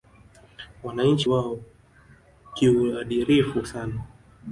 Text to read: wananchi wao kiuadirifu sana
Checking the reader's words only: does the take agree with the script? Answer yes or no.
yes